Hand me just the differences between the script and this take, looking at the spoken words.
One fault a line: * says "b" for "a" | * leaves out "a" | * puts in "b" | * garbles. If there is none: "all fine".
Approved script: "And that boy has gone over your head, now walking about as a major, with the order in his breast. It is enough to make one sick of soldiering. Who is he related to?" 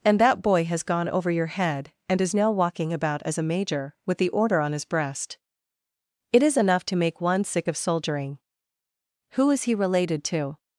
* puts in "and is"
* says "on" for "in"